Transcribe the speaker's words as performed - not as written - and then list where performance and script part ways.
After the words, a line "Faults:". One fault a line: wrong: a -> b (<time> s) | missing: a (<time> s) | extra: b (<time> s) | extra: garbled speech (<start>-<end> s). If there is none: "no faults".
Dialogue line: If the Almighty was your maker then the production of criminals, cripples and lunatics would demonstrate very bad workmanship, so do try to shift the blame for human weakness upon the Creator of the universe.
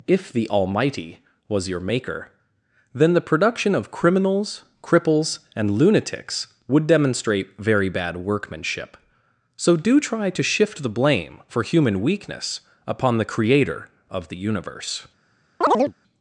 If the Almighty was your maker then the production of criminals, cripples and lunatics would demonstrate very bad workmanship, so do try to shift the blame for human weakness upon the Creator of the universe.
Faults:
no faults